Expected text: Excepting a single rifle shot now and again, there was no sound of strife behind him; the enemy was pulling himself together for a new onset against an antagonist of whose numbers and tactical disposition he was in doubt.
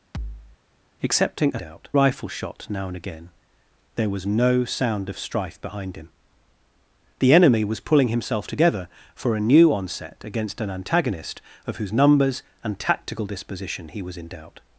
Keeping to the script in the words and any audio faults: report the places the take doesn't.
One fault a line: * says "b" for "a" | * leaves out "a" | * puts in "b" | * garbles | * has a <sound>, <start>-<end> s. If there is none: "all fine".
* has a thud, 0.1-0.6 s
* says "doubt" for "single"